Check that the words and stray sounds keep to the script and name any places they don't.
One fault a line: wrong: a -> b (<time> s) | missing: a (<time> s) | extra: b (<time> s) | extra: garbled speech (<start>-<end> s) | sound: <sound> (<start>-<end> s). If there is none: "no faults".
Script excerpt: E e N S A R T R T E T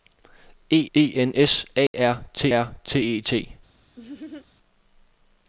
sound: dropout (1.9-1.9 s)
sound: laugh (4.0-4.5 s)